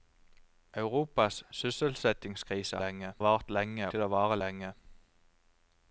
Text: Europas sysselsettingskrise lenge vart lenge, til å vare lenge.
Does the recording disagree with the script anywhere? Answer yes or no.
no